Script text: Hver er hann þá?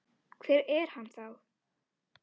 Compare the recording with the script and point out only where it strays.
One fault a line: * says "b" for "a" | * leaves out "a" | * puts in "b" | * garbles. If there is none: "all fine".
all fine